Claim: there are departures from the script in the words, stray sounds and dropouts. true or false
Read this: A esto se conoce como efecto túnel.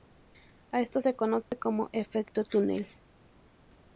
true